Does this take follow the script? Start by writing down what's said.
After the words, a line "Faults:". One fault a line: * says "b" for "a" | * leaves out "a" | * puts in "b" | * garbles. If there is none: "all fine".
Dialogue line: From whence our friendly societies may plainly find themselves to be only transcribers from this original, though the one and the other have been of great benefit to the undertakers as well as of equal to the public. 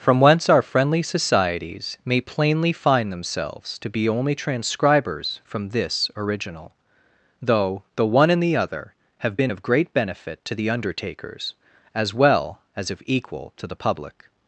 From whence our friendly societies may plainly find themselves to be only transcribers from this original, though the one and the other have been of great benefit to the undertakers as well as of equal to the public.
Faults:
all fine